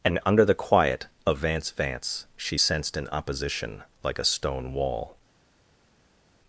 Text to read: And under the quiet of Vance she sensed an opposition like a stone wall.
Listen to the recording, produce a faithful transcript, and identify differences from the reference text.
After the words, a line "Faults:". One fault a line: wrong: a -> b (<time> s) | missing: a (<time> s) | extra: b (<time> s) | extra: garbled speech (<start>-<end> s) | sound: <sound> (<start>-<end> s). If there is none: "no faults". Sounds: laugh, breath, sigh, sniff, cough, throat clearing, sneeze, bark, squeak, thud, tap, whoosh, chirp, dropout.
And under the quiet of Vance Vance she sensed an opposition like a stone wall.
Faults:
extra: Vance (1.7 s)